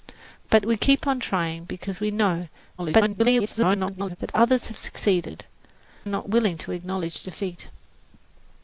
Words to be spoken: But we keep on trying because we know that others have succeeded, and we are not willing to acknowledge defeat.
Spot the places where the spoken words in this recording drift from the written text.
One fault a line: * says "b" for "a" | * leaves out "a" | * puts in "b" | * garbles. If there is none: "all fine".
* garbles
* leaves out "and we"